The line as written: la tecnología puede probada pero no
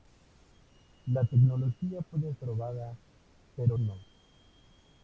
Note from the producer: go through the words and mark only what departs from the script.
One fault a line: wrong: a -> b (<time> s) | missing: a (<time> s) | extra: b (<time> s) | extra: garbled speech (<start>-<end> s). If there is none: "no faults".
no faults